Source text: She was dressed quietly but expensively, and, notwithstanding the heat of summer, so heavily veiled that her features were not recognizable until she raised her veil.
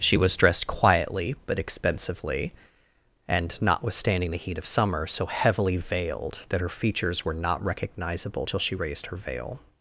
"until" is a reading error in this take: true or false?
true